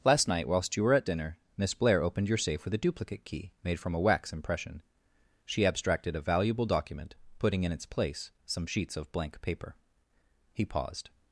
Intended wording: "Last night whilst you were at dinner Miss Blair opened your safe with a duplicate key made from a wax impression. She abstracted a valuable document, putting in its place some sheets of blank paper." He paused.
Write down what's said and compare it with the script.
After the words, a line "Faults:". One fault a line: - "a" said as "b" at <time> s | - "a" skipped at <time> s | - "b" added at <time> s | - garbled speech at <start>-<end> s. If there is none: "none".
"Last night whilst you were at dinner Miss Blair opened your safe with a duplicate key made from a wax impression. She abstracted a valuable document, putting in its place some sheets of blank paper." He paused.
Faults:
none